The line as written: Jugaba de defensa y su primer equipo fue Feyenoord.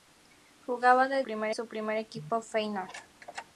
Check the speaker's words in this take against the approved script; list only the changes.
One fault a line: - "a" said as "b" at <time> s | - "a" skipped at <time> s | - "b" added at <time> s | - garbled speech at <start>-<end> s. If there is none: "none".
- "defensa" said as "primer" at 1.2 s
- "fue" skipped at 2.4 s